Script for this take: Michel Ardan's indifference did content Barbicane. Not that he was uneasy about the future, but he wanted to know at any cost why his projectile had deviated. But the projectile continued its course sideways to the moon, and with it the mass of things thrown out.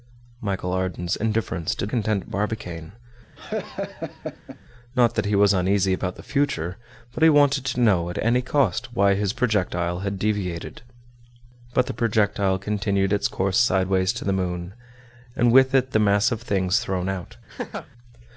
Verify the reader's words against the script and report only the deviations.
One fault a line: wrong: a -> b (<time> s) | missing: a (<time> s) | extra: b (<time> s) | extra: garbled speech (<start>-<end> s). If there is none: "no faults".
no faults